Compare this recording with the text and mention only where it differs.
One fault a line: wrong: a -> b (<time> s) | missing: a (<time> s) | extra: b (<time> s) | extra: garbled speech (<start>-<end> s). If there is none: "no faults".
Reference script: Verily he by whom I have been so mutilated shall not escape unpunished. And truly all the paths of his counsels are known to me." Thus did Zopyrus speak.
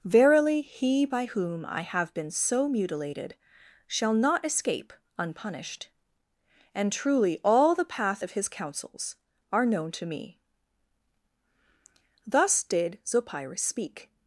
wrong: paths -> path (7.9 s)